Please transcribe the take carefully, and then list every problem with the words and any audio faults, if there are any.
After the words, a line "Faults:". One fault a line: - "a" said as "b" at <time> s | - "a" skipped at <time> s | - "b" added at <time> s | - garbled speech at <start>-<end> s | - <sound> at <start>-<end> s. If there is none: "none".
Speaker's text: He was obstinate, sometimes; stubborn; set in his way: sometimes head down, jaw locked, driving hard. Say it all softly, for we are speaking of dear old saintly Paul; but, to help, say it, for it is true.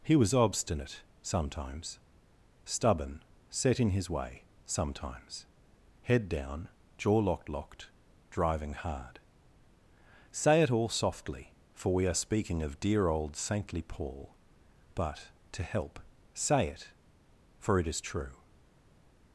He was obstinate, sometimes; stubborn; set in his way: sometimes head down, jaw locked locked, driving hard. Say it all softly, for we are speaking of dear old saintly Paul; but, to help, say it, for it is true.
Faults:
- "locked" added at 7.5 s